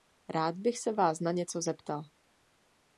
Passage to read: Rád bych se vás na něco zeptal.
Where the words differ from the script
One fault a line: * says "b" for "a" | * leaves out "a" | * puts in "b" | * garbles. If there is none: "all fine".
all fine